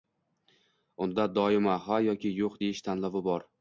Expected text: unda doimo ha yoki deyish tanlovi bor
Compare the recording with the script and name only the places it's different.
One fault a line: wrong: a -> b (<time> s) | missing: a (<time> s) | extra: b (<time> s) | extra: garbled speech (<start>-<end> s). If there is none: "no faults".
extra: yo‘q (2.4 s)